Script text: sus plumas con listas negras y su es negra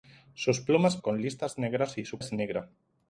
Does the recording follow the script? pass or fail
pass